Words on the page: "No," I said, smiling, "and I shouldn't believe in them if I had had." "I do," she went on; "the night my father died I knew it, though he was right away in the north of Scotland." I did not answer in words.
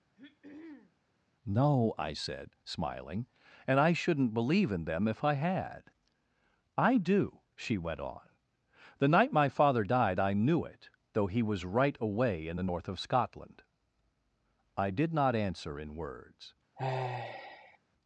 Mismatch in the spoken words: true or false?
true